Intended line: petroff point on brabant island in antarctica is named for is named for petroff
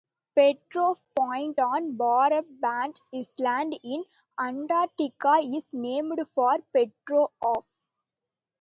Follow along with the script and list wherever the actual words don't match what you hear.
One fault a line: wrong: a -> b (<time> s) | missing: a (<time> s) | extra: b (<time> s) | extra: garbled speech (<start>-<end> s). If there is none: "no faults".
missing: is named for (6.6 s)